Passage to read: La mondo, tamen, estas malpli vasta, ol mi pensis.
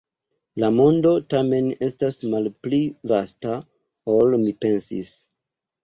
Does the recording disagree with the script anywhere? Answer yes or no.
no